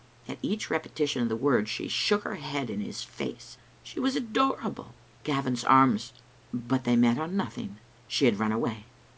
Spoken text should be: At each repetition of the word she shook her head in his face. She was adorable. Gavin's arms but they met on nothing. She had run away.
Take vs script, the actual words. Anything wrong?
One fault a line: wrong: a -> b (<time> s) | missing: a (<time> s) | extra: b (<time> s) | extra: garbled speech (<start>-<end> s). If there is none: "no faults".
no faults